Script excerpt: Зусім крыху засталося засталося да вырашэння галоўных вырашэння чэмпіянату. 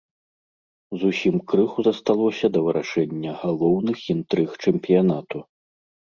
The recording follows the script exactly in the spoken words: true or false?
false